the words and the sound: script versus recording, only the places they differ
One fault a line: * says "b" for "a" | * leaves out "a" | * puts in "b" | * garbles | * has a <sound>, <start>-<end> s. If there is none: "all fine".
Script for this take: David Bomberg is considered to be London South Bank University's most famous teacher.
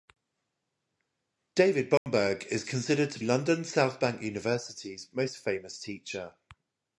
* has a dropout, 2.0-2.1 s
* leaves out "be"